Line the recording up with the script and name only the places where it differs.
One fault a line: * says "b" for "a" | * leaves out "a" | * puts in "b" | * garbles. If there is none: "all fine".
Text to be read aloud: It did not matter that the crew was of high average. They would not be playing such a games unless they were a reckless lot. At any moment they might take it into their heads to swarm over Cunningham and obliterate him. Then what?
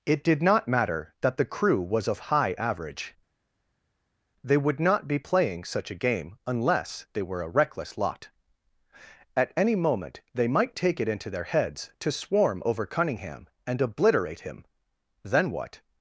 * says "game" for "games"